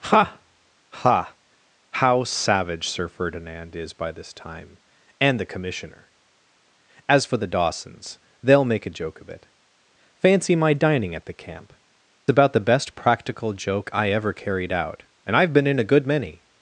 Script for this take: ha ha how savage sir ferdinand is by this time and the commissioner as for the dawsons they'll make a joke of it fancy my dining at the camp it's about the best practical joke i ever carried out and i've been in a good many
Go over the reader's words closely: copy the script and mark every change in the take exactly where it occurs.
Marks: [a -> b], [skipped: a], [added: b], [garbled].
ha ha how savage sir ferdinand is by this time and the commissioner as for the dawsons they'll make a joke of it fancy my dining at the camp [skipped: it's] about the best practical joke i ever carried out and i've been in a good many